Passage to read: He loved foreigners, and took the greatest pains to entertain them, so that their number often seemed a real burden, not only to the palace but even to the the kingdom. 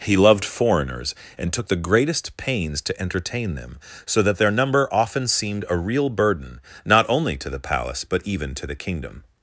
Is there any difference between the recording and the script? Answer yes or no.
yes